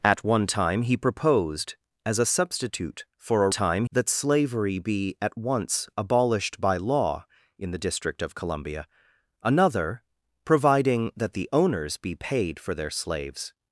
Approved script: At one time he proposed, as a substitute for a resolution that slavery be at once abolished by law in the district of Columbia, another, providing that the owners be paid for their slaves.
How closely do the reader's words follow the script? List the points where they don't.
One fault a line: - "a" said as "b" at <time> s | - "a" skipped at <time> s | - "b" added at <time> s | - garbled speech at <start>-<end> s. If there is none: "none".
- "resolution" said as "time" at 3.5 s